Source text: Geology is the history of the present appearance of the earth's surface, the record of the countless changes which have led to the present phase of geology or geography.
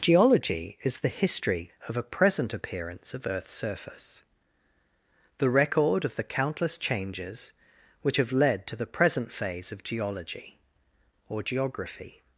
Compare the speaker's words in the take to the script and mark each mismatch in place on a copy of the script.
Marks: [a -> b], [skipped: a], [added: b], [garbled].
Geology is the history of [the -> a] present appearance of [skipped: the] earth's surface, the record of the countless changes which have led to the present phase of geology or geography.